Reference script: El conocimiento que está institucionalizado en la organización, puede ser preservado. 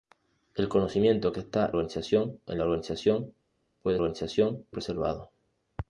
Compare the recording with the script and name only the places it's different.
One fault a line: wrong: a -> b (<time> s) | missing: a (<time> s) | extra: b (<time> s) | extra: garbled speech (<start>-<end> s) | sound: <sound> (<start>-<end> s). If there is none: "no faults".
wrong: institucionalizado -> organización (1.7 s)
wrong: ser -> organización (4.0 s)